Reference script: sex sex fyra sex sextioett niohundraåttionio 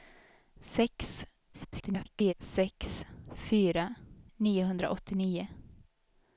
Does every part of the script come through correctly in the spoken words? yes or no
no